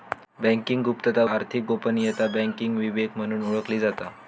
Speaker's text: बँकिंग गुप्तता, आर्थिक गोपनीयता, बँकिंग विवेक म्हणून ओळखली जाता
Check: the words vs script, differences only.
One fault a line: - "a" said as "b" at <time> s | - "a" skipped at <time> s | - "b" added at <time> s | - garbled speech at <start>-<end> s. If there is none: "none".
none